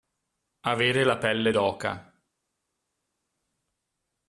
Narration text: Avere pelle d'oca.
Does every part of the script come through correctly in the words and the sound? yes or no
no